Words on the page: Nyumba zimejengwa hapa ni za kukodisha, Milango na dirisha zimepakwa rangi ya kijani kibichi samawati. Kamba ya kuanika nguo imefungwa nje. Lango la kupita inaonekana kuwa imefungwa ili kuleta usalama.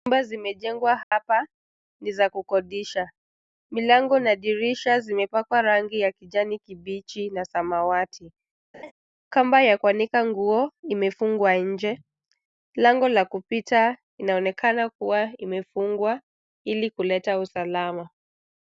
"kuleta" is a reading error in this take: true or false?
false